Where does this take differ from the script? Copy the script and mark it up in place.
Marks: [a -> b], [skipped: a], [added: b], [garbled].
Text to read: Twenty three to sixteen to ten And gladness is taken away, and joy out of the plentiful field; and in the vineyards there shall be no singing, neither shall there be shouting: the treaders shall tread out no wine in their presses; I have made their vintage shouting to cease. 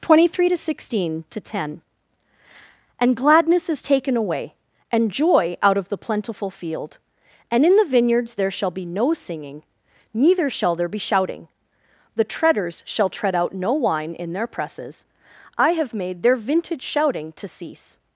Twenty three to sixteen to ten And gladness is taken away, and joy out of the plentiful field; and in the vineyards there shall be no singing, neither shall there be shouting: the treaders shall tread out no wine in their presses; I have made their vintage shouting to cease.